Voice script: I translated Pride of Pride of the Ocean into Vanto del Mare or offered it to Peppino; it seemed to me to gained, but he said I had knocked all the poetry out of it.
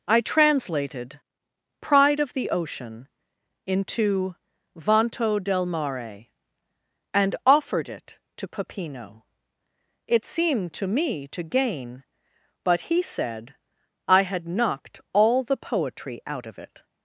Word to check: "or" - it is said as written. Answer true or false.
false